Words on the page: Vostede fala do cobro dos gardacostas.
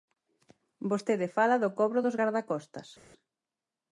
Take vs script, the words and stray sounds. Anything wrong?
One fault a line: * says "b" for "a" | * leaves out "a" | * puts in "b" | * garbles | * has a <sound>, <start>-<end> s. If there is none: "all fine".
all fine